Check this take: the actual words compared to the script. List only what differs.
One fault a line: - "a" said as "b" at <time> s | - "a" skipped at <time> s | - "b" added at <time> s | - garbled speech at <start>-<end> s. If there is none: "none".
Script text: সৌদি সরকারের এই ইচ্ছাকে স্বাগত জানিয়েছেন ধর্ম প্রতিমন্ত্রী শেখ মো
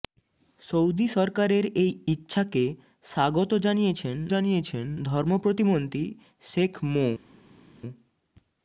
- "জানিয়েছেন" added at 4.3 s